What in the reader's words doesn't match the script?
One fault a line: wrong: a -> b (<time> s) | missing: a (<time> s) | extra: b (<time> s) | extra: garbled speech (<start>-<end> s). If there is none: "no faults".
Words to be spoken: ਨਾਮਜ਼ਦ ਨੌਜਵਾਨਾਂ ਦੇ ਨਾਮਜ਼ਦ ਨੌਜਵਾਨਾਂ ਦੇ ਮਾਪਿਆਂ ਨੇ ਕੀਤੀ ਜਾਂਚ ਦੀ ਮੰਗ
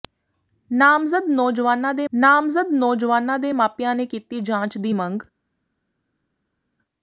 no faults